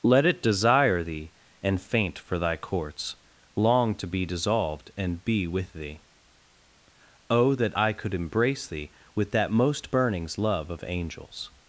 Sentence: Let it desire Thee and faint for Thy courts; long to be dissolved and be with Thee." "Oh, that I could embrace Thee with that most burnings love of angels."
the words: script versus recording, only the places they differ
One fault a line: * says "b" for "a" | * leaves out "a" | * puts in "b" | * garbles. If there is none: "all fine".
all fine